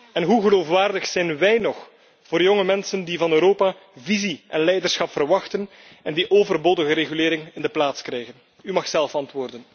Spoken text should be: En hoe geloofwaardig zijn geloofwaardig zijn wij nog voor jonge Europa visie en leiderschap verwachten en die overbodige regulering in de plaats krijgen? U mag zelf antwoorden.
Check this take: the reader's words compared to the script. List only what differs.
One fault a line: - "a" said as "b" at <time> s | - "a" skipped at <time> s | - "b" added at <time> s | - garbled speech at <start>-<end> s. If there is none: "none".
- "geloofwaardig zijn" skipped at 1.4 s
- "mensen die van" added at 2.6 s